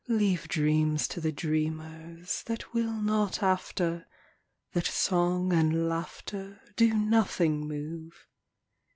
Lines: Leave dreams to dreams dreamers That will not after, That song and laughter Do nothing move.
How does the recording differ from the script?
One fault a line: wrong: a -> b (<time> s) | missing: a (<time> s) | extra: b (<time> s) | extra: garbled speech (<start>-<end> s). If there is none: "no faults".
wrong: dreams -> the (1.2 s)